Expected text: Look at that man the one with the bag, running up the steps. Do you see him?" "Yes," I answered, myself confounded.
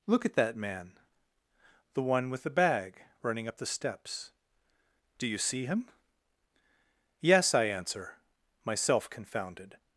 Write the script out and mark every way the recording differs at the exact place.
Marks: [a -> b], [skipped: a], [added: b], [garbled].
Look at that man the one with the bag, running up the steps. Do you see him?" "Yes," I [answered, -> answer] myself confounded.